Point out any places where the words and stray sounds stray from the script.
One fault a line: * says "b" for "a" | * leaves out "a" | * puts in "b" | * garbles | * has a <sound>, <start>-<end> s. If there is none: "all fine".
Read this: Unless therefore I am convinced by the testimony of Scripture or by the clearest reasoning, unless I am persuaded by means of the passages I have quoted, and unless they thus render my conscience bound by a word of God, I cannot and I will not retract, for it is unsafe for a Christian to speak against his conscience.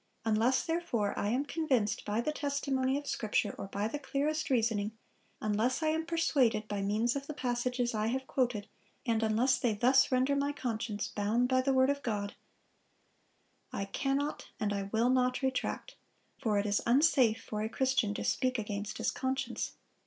* says "the" for "a"